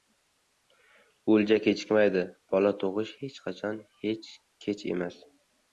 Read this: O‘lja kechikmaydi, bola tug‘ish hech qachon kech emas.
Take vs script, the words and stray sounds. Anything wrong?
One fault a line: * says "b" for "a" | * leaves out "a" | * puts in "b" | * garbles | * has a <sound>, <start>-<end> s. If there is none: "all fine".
all fine